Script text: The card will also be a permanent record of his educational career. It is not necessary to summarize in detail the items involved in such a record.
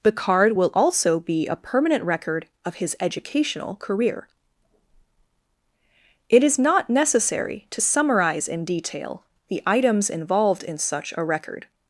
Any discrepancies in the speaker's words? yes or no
no